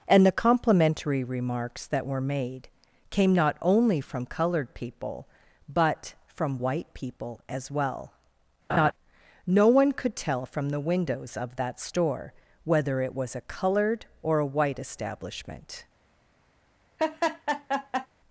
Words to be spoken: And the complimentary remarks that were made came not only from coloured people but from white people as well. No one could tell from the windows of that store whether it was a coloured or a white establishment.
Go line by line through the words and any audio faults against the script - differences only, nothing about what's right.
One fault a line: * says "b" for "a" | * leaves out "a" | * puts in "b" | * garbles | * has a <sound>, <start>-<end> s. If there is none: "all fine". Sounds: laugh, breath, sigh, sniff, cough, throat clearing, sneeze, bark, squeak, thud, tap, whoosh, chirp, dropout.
* has a laugh, 8.7-8.9 s
* has a laugh, 17.0-18.1 s